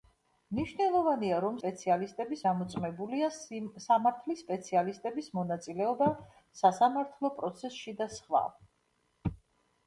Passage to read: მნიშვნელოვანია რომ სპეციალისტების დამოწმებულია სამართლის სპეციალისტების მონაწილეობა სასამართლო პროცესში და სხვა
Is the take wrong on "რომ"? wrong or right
right